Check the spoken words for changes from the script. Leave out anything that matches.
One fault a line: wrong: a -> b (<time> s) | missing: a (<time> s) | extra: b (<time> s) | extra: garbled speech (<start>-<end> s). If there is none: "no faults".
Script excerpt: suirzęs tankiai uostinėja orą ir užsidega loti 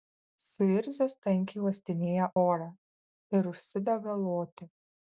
no faults